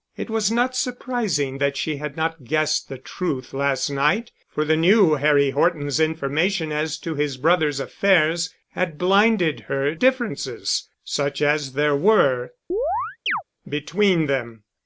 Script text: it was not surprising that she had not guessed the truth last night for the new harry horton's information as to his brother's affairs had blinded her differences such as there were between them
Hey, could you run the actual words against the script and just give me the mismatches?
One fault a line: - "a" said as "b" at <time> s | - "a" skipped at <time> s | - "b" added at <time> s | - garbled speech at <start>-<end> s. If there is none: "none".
none